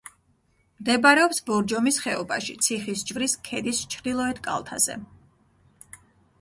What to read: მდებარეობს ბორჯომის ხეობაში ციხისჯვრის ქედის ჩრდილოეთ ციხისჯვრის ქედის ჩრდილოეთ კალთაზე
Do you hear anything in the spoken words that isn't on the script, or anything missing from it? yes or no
yes